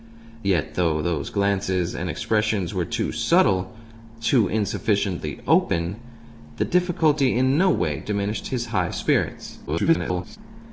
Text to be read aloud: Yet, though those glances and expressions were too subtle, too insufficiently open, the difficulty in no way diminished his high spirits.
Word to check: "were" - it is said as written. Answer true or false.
true